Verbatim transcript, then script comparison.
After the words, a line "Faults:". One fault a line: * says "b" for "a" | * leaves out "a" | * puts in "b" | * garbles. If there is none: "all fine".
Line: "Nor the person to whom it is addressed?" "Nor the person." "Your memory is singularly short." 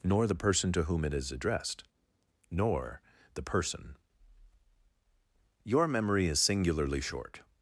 "Nor the person to whom it is addressed?" "Nor the person." "Your memory is singularly short."
Faults:
all fine